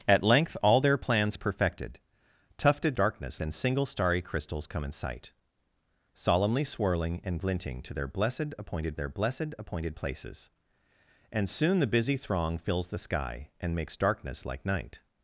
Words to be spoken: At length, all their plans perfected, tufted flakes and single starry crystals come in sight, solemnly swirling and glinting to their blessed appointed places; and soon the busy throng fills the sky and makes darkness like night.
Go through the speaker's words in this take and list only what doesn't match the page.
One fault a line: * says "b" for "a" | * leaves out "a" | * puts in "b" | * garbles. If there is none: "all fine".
* says "darkness" for "flakes"
* puts in "their blessed appointed"